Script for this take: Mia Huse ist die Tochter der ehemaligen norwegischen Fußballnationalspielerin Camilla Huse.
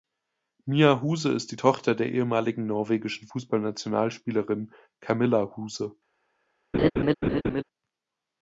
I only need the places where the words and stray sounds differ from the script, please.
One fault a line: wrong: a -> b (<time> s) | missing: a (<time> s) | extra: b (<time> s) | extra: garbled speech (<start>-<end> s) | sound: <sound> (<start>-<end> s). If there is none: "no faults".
sound: laugh (6.7-7.6 s)